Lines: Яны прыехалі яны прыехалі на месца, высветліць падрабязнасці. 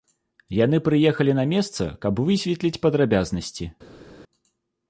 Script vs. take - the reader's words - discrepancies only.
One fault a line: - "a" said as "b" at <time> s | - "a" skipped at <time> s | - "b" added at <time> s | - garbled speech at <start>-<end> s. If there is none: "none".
- "яны прыехалі" skipped at 1.4 s
- "каб" added at 2.1 s